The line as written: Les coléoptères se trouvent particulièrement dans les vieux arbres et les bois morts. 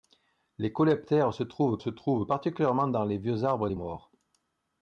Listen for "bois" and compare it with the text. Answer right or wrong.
wrong